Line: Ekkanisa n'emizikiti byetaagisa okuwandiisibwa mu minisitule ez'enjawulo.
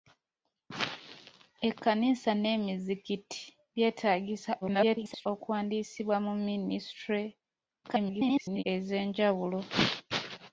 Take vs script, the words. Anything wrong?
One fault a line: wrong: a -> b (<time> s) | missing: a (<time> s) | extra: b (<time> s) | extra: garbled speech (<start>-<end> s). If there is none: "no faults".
extra: garbled speech (4.6-5.3 s)
extra: garbled speech (7.8-8.6 s)